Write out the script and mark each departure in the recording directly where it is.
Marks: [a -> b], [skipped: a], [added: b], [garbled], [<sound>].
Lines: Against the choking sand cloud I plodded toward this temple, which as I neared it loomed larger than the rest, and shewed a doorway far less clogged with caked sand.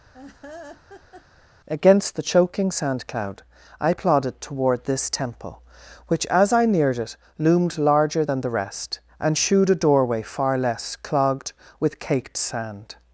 [laugh] Against the choking sand cloud I plodded toward this temple, which as I neared it loomed larger than the rest, and shewed a doorway far less clogged with caked sand.